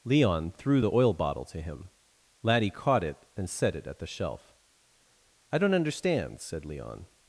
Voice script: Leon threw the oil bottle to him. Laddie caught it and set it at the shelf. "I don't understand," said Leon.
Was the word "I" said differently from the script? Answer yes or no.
no